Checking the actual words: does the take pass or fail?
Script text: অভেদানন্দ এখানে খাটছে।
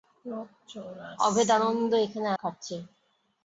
pass